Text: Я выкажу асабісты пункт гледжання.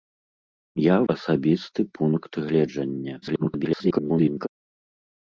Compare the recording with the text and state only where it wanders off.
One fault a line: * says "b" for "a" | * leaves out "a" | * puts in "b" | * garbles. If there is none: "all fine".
* leaves out "выкажу"
* garbles